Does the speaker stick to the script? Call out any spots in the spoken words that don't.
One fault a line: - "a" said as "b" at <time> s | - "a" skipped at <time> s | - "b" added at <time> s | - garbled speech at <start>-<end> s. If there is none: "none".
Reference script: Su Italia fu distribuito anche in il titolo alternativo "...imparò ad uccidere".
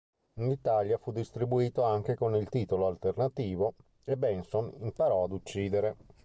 - "Su" said as "In" at 0.4 s
- "in" said as "con" at 2.1 s
- "e Benson" added at 4.0 s